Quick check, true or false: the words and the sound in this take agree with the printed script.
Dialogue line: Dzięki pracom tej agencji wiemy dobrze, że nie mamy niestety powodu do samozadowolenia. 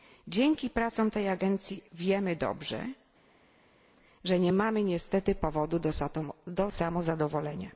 true